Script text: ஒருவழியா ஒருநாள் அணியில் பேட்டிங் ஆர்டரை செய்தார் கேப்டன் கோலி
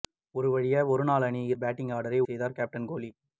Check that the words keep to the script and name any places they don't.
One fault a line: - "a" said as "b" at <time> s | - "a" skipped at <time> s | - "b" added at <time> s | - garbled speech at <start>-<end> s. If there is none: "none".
none